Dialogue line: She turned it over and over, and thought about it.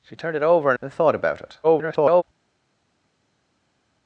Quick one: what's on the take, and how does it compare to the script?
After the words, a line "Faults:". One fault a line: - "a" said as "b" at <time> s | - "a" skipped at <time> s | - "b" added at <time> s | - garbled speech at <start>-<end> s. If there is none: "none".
She turned it over and and thought about it. [garbled]
Faults:
- "over" skipped at 0.8 s
- garbled speech at 1.6-2.2 s